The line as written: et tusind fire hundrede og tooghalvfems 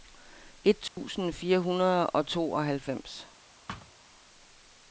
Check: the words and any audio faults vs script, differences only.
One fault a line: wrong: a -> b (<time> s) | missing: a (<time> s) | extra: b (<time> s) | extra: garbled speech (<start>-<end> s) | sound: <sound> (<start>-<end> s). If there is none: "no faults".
sound: dropout (0.9-1.0 s)
sound: thud (3.7-3.9 s)